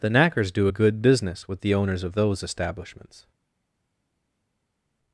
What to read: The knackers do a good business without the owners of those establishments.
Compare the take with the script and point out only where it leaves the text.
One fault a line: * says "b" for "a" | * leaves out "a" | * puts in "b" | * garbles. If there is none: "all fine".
* says "with" for "without"